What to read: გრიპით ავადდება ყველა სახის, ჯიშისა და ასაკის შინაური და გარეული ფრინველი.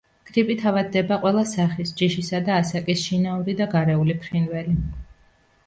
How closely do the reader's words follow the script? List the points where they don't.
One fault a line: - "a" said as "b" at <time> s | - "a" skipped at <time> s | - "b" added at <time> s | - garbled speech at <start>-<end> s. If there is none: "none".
none